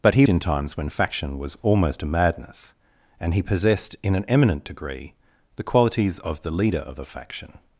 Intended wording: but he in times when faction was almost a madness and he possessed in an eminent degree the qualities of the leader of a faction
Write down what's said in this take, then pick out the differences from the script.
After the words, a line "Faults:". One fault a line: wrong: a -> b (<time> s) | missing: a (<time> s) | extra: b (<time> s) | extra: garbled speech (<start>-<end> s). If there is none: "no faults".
but he in times when faction was almost a madness and he possessed in an eminent degree the qualities of the leader of a faction
Faults:
no faults